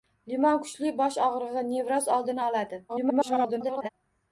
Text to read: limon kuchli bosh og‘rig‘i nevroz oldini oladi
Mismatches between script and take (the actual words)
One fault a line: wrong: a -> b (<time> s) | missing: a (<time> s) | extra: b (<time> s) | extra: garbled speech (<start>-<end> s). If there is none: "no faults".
extra: garbled speech (2.9-3.9 s)